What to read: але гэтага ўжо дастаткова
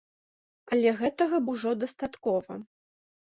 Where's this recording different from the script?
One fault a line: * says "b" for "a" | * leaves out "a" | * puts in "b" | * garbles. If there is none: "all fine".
all fine